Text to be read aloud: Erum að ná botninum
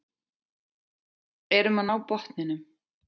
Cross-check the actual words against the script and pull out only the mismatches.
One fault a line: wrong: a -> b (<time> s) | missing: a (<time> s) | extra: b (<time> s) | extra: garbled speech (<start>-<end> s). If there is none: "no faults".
no faults